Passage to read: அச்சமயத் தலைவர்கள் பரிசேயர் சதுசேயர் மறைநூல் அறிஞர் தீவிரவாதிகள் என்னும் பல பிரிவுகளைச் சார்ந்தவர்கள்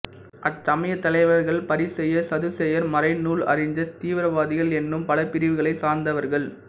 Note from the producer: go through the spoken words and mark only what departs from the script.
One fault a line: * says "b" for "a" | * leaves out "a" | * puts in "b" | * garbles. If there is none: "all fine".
all fine